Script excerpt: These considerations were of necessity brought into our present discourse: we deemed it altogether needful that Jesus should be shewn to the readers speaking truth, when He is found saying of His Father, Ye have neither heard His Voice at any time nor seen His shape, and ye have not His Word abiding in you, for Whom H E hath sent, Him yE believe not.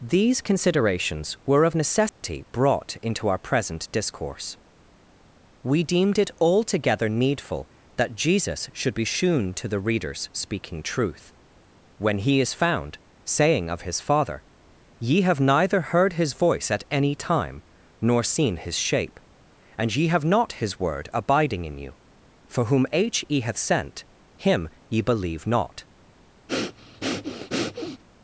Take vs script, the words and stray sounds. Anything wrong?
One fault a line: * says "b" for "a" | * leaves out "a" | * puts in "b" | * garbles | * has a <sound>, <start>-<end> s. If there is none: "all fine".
* has a dropout, 2.1-2.2 s
* has a breath, 26.5-28.0 s